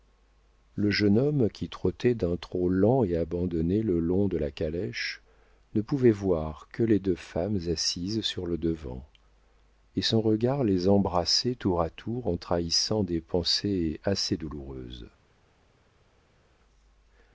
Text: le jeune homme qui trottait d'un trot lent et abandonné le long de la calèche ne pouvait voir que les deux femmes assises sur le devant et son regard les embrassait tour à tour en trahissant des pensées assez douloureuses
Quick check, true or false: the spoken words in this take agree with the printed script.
true